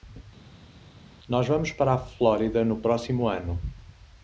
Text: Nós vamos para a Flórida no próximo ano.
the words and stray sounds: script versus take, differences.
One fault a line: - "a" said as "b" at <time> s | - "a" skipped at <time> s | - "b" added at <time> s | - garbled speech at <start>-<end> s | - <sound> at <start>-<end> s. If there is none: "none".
none